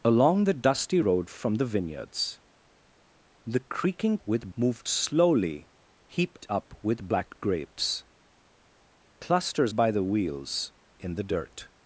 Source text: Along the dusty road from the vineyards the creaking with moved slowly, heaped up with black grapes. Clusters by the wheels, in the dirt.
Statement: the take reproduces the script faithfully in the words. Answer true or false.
true